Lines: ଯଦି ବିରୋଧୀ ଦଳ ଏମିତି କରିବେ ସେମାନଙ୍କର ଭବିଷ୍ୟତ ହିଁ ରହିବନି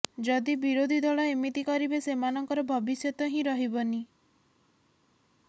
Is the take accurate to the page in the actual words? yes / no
yes